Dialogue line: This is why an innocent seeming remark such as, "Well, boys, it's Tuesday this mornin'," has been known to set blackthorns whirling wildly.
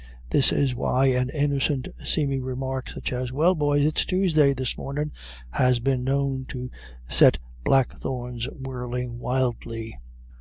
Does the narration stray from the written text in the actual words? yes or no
no